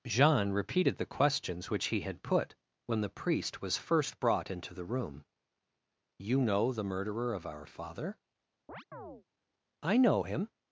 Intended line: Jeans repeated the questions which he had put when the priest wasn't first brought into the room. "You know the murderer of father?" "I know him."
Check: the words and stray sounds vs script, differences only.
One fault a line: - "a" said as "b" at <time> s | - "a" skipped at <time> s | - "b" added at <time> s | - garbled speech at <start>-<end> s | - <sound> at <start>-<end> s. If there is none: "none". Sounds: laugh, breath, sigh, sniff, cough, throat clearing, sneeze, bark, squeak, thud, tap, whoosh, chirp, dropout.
- "Jeans" said as "Jean" at 0.1 s
- "wasn't" said as "was" at 3.6 s
- "our" added at 7.4 s
- chirp at 8.7-9.2 s